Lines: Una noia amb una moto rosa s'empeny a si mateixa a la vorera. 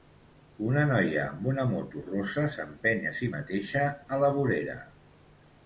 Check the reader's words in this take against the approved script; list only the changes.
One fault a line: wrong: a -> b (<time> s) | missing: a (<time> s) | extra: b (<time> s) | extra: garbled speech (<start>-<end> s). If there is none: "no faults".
no faults